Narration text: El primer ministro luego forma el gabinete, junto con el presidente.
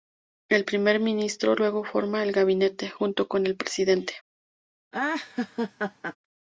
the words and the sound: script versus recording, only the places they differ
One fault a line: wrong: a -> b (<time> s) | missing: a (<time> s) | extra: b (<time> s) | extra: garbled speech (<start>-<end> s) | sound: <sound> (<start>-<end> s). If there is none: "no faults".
sound: laugh (4.9-6.2 s)